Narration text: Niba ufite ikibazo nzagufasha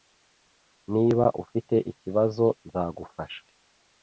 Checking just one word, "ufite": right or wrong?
right